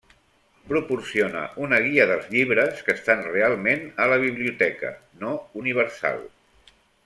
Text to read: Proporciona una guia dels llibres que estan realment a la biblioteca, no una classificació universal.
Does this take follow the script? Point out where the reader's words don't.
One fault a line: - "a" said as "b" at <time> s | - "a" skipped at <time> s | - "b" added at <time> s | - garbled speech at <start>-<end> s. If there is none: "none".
- "una classificació" skipped at 5.3 s